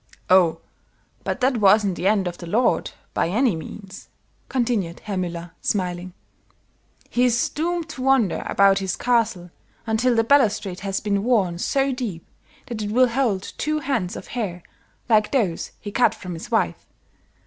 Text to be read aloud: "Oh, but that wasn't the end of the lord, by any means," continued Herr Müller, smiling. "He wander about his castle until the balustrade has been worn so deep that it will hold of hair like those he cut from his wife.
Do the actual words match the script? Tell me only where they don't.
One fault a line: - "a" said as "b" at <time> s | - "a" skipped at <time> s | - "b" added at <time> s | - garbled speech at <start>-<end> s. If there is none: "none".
- "is doomed to" added at 7.2 s
- "two heads" added at 13.6 s